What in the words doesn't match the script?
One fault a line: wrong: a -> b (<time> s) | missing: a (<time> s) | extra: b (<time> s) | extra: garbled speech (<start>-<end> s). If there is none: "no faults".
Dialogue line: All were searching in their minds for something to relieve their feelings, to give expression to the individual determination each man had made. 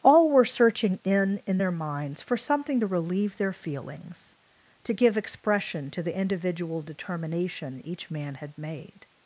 extra: in (1.4 s)